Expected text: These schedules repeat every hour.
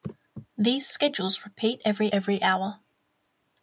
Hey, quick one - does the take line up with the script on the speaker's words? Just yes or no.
no